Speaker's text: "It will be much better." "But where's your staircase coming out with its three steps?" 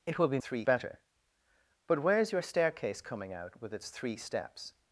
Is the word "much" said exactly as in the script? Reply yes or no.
no